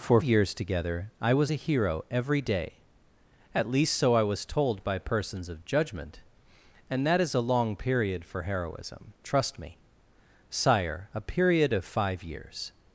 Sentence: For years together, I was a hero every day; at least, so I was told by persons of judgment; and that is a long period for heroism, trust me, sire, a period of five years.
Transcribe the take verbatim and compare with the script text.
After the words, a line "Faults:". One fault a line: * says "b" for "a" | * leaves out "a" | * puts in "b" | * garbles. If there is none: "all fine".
For years together, I was a hero every day; at least, so I was told by persons of judgment; and that is a long period for heroism, trust me, sire, a period of five years.
Faults:
all fine